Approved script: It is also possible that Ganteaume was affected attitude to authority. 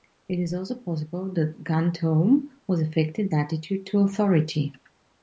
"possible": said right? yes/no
yes